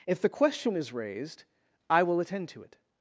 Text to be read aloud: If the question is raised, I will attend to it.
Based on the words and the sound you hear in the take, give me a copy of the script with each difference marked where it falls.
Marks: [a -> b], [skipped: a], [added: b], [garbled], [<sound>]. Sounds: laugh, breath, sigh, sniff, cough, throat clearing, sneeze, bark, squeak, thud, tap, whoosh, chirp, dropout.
If the question is raised, I will attend to it.